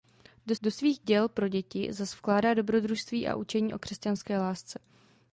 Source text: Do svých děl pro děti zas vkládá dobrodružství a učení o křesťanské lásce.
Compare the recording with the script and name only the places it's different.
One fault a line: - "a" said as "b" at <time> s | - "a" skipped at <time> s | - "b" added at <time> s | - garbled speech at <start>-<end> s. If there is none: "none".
- "do" added at 0.6 s